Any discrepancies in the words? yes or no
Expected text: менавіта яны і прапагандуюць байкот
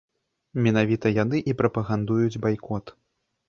no